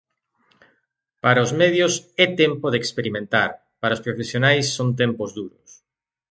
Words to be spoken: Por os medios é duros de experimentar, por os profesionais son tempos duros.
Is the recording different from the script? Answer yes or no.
yes